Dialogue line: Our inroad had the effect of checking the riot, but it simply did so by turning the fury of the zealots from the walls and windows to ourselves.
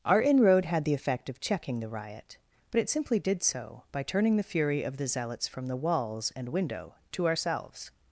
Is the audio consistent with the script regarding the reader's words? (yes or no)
no